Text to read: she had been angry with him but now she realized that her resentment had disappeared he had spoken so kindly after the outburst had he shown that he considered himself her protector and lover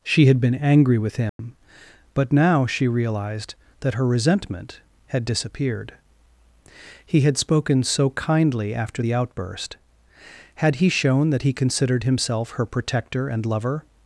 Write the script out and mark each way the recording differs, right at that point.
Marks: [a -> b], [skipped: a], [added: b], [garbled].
she had been angry with him but now she realized that her resentment had disappeared he had spoken so kindly after the outburst had he shown that he considered himself her protector and lover